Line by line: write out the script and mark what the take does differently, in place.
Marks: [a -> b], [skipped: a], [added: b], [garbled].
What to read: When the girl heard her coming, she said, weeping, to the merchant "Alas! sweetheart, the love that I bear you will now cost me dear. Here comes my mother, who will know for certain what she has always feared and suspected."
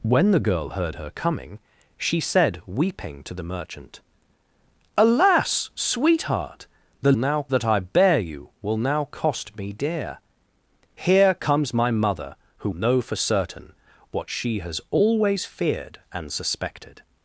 When the girl heard her coming, she said, weeping, to the merchant "Alas! sweetheart, the [love -> now] that I bear you will now cost me dear. Here comes my mother, who [skipped: will] know for certain what she has always feared and suspected."